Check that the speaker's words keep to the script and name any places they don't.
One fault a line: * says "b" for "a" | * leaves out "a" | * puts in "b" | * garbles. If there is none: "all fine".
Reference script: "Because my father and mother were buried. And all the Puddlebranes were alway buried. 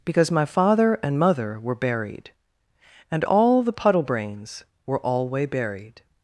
all fine